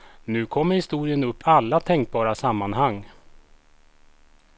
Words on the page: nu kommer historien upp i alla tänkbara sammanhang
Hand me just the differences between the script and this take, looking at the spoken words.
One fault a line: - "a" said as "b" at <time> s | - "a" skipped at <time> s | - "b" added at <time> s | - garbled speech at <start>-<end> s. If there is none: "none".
- "i" skipped at 1.4 s